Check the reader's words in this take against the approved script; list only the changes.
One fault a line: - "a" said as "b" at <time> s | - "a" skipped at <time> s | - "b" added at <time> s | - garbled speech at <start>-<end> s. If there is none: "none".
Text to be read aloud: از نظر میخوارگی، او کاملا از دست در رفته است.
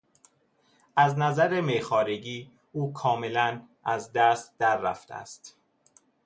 none